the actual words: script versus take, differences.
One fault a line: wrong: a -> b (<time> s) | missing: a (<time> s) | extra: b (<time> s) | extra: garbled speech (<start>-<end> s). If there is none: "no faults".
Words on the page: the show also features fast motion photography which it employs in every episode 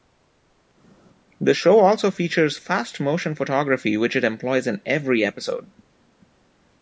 no faults